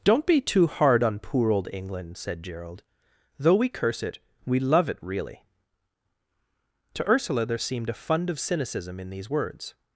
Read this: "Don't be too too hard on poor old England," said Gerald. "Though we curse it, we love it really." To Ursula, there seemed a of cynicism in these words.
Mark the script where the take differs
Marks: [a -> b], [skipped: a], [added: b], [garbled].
"Don't be too [skipped: too] hard on poor old England," said Gerald. "Though we curse it, we love it really." To Ursula, there seemed a [added: fund] of cynicism in these words.